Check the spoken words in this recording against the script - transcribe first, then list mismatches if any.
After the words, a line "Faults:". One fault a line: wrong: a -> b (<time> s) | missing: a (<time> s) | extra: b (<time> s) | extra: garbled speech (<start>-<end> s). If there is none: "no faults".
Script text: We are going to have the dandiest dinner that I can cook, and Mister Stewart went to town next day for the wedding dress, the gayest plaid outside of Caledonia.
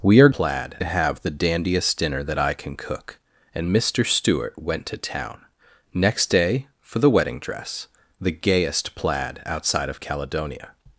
We are plaid to have the dandiest dinner that I can cook, and Mister Stewart went to town next day for the wedding dress, the gayest plaid outside of Caledonia.
Faults:
wrong: going -> plaid (0.3 s)